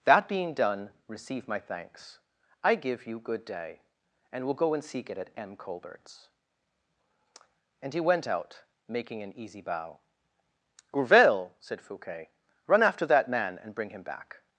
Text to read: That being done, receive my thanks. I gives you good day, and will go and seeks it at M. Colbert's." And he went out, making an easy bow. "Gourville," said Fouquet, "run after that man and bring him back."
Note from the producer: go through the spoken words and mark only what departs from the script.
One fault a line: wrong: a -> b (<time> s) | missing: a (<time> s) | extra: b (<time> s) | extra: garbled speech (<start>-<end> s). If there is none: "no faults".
wrong: gives -> give (2.8 s)
wrong: seeks -> seek (4.8 s)